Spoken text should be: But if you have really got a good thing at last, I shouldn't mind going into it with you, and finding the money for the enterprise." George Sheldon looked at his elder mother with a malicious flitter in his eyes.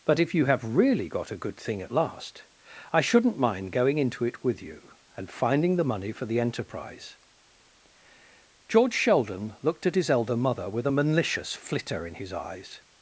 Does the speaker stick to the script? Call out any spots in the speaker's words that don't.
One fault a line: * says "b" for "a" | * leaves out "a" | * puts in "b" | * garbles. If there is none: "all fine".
all fine